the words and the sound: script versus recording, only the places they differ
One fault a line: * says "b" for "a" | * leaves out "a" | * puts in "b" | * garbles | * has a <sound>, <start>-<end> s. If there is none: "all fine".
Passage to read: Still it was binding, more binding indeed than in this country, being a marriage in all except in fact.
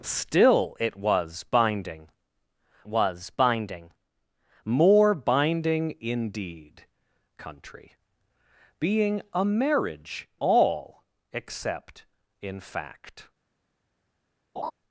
* puts in "was binding"
* leaves out "than in this"
* leaves out "in"
* has a laugh, 14.6-14.7 s